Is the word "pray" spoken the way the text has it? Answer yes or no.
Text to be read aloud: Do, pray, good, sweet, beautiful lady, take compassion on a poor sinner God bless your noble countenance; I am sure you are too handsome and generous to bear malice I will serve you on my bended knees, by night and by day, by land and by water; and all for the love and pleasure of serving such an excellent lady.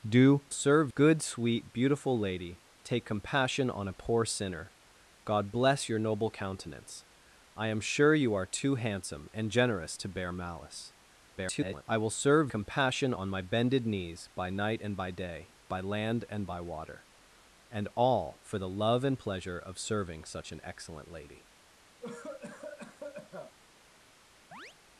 no